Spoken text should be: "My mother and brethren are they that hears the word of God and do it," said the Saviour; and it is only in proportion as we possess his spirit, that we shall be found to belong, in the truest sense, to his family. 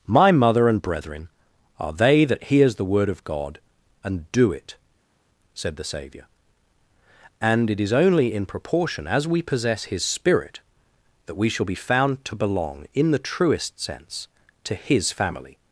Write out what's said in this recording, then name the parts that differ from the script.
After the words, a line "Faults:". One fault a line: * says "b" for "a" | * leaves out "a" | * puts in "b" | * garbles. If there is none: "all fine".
"My mother and brethren are they that hears the word of God and do it," said the Saviour; and it is only in proportion as we possess his spirit, that we shall be found to belong, in the truest sense, to his family.
Faults:
all fine